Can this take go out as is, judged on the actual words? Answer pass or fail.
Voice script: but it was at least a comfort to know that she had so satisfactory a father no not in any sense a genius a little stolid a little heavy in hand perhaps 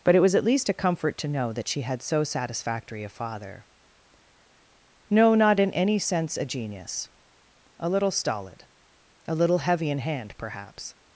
pass